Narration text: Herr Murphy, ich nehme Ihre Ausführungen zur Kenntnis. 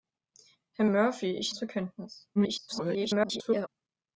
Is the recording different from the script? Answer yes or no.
yes